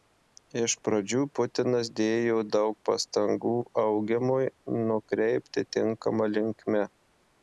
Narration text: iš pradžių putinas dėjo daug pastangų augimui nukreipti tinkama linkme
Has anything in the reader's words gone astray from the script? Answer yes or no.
no